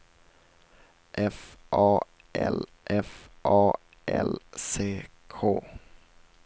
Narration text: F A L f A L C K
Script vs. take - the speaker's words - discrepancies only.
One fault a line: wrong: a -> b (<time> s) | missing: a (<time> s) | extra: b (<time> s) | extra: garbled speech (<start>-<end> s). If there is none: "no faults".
no faults